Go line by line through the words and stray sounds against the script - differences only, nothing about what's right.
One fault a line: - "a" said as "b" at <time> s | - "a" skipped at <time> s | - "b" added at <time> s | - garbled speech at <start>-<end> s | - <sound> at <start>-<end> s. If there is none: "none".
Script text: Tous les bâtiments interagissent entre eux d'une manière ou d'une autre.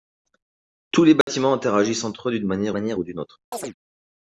- dropout at 1.2-1.3 s
- "manière" added at 2.7 s
- chirp at 3.5-3.7 s